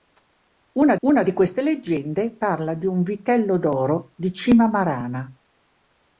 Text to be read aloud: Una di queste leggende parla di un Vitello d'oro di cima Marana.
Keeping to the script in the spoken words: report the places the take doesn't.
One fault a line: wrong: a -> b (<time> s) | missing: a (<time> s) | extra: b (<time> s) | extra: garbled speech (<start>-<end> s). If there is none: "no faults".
extra: una (1.1 s)